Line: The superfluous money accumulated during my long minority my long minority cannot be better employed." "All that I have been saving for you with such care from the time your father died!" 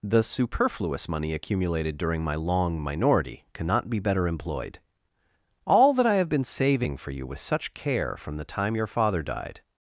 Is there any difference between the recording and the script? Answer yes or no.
yes